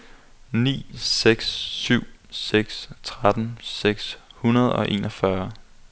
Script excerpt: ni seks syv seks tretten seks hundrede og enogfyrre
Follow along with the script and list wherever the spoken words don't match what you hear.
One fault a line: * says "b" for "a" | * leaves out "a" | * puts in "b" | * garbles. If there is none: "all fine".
all fine